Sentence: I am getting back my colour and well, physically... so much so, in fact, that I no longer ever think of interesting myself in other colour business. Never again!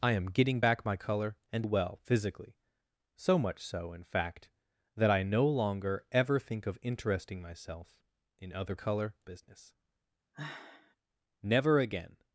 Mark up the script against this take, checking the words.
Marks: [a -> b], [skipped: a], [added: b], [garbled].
I am getting back my colour and well, physically... so much so, in fact, that I no longer ever think of interesting myself in other colour business. Never again!